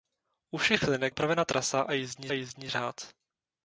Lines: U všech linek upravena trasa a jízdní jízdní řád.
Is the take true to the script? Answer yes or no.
yes